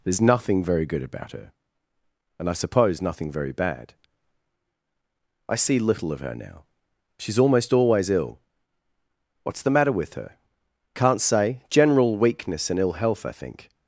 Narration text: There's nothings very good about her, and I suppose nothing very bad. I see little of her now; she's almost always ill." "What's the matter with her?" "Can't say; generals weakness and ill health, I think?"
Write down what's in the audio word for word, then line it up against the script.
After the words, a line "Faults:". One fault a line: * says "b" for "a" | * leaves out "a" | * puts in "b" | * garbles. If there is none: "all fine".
There's nothing very good about her, and I suppose nothing very bad. I see little of her now; she's almost always ill." "What's the matter with her?" "Can't say; general weakness and ill health, I think?"
Faults:
* says "nothing" for "nothings"
* says "general" for "generals"